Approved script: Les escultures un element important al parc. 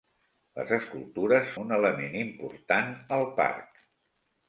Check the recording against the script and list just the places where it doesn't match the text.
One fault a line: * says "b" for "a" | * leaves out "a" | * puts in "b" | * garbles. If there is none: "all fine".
all fine